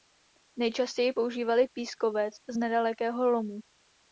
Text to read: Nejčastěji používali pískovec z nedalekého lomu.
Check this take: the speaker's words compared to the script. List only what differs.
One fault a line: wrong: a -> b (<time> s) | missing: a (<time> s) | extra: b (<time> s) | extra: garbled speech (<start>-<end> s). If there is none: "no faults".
no faults